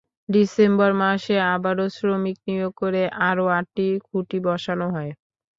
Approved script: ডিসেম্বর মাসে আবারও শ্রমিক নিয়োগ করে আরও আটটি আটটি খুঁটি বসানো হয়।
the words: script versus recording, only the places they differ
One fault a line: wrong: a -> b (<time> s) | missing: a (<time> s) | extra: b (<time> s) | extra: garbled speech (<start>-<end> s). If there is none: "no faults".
missing: আটটি (3.9 s)